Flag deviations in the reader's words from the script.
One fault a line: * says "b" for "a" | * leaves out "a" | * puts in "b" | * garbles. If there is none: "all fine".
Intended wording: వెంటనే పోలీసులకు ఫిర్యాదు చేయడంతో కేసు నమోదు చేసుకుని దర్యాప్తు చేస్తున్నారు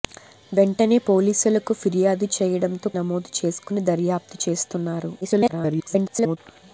* leaves out "కేసు"
* garbles